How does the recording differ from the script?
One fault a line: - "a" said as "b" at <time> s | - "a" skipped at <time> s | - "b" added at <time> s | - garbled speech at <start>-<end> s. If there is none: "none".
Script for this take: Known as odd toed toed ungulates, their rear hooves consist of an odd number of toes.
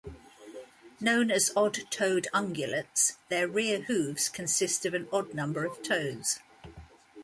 - "toed" skipped at 2.3 s